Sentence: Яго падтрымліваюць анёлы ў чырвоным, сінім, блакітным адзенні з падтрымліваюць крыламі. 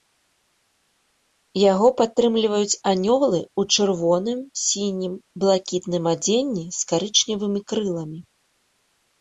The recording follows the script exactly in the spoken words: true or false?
false